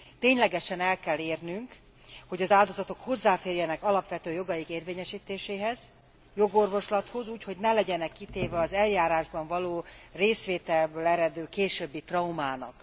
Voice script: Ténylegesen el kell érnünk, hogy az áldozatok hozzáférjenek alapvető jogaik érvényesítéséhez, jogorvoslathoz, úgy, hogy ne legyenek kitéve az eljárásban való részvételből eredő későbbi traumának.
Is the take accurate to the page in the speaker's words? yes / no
yes